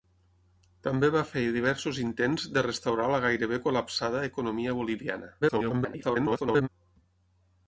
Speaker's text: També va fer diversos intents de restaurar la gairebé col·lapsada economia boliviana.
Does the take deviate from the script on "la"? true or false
false